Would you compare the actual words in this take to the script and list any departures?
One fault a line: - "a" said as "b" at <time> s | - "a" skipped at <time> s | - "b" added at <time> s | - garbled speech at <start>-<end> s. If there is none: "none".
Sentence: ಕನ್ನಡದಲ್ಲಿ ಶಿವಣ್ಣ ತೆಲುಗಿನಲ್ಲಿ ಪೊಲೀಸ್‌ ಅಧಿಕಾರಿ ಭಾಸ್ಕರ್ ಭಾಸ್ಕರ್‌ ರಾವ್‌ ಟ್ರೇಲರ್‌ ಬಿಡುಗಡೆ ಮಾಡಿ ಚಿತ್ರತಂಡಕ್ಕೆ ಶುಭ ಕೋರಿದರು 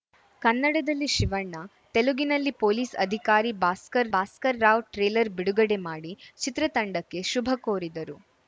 none